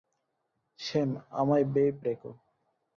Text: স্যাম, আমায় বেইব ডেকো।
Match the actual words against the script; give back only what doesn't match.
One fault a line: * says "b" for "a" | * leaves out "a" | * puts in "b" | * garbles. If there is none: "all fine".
all fine